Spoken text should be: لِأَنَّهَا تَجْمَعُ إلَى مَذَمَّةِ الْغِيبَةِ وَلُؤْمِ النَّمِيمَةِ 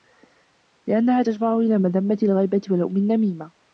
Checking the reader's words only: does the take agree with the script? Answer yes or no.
yes